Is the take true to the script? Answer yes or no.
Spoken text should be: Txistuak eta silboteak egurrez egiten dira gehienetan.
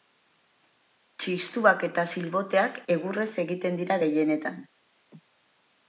yes